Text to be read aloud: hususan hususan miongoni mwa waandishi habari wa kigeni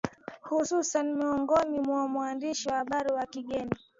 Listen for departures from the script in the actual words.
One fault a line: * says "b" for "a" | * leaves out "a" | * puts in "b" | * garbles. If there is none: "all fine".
* leaves out "hususan"
* puts in "wa"